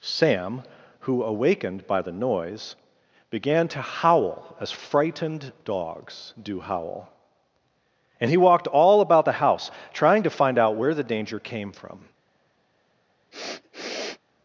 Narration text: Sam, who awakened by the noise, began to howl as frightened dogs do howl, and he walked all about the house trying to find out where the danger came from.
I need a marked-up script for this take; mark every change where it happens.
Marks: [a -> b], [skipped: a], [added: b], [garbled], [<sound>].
Sam, who awakened by the noise, began to howl as frightened dogs do howl, and he walked all about the house trying to find out where the danger came from. [sniff]